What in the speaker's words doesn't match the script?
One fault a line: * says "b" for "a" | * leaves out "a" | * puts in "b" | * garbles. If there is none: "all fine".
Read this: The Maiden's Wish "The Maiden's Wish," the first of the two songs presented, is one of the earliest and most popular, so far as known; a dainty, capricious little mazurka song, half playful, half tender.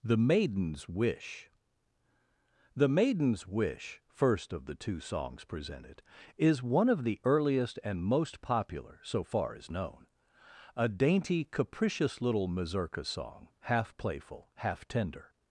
* leaves out "the"